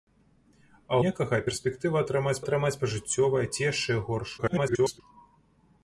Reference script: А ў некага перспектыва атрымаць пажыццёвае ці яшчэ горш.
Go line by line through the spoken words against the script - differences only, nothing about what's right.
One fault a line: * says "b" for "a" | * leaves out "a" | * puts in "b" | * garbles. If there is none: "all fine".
* leaves out "ў"
* puts in "атрымаць"
* garbles